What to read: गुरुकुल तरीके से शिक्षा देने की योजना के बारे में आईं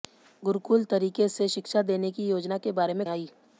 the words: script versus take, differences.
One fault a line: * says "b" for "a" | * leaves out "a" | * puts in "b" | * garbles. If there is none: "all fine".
all fine